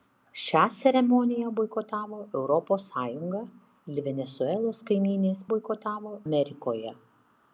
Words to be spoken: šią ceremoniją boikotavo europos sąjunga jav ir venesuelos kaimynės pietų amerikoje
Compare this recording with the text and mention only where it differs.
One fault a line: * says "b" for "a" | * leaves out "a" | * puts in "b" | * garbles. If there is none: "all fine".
* leaves out "jav"
* says "boikotavo" for "pietų"